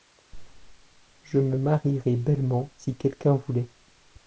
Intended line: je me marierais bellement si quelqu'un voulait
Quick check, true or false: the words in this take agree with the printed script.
true